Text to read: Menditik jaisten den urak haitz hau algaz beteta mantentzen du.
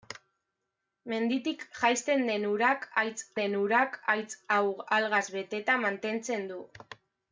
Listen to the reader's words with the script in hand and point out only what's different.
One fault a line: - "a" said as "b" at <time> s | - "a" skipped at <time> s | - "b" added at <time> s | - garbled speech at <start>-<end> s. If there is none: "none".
- "den urak haitz" added at 3.4 s